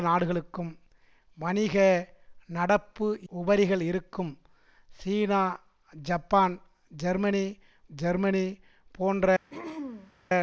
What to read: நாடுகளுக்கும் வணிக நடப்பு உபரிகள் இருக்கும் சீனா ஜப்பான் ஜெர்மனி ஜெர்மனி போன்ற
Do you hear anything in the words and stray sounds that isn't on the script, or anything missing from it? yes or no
yes